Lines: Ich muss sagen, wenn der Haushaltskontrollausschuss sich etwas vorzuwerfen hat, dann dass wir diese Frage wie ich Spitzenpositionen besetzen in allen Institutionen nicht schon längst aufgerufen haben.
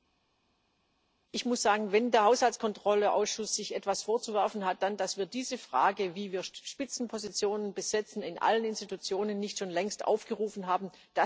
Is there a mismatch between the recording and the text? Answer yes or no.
yes